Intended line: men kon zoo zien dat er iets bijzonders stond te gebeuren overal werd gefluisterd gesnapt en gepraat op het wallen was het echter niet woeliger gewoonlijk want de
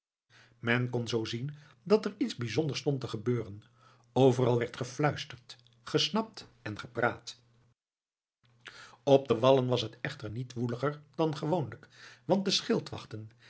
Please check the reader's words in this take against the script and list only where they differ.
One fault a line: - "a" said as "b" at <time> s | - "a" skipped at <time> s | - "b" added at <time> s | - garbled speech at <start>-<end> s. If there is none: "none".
- "het" said as "de" at 9.3 s
- "dan" added at 11.1 s